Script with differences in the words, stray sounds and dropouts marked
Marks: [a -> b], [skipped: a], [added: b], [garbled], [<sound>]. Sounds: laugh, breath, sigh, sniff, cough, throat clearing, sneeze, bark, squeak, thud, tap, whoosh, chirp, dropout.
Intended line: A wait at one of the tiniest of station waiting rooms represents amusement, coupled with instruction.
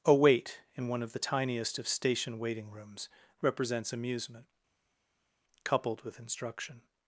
A wait [at -> in] one of the tiniest of station waiting rooms represents amusement, coupled with instruction.